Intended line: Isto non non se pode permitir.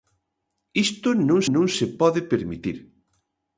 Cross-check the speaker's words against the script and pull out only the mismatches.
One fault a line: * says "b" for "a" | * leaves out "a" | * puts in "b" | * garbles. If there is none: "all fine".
all fine